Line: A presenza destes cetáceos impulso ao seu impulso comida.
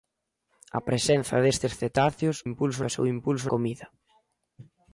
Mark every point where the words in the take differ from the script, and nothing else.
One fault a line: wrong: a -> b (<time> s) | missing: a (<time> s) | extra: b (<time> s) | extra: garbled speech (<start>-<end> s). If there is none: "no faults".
no faults